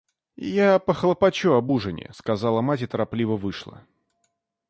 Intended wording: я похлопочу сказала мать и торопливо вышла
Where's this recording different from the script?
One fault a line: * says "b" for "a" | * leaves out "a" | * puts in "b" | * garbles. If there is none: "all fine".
* puts in "об ужине"